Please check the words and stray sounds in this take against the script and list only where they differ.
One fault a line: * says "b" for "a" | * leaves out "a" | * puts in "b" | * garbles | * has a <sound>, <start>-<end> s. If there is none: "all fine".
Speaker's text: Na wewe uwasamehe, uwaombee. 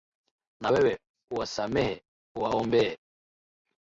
all fine